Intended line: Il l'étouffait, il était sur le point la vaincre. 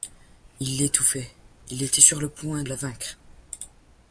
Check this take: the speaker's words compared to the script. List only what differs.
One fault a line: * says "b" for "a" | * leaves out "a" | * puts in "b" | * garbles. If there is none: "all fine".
all fine